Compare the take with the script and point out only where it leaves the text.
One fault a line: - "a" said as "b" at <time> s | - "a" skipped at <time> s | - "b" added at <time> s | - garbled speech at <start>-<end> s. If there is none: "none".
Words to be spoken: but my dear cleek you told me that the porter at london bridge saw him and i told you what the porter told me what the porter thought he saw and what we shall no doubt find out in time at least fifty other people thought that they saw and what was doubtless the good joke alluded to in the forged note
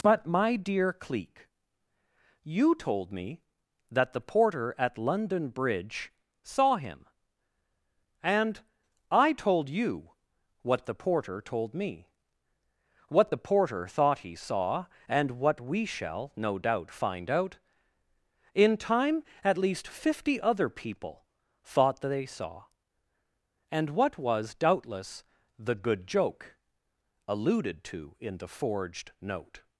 none